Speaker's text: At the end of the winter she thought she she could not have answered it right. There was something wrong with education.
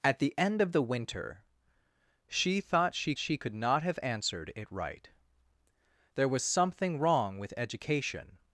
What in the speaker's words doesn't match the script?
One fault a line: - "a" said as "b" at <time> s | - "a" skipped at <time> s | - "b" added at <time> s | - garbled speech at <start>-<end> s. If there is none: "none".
none